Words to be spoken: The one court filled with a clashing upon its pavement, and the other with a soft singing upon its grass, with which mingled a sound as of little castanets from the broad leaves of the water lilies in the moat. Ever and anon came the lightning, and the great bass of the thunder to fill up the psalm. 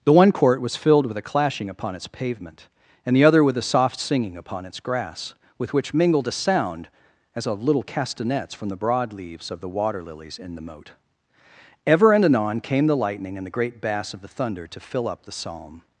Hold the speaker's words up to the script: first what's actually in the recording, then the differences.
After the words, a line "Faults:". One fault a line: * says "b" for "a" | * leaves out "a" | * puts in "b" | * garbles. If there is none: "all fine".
The one court was filled with a clashing upon its pavement, and the other with a soft singing upon its grass, with which mingled a sound as of little castanets from the broad leaves of the water lilies in the moat. Ever and anon came the lightning, and the great bass of the thunder to fill up the psalm.
Faults:
* puts in "was"